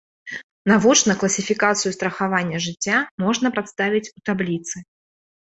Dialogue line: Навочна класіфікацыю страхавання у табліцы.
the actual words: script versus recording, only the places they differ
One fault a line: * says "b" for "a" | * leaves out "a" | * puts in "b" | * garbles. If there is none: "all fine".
* puts in "жыцця можна прадставіць"